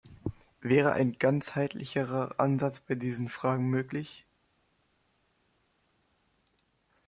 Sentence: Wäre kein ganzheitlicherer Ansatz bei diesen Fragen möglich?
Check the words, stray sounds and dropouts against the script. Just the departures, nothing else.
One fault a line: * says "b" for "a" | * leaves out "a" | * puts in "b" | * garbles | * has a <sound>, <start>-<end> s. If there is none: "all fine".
* says "ein" for "kein"